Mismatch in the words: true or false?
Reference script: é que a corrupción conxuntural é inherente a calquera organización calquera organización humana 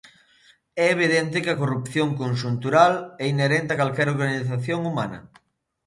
true